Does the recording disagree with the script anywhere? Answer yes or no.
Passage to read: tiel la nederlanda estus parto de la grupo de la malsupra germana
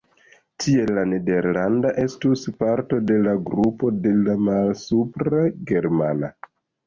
no